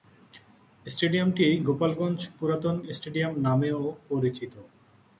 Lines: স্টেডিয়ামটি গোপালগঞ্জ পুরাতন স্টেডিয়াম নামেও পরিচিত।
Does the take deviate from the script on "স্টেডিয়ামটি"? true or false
false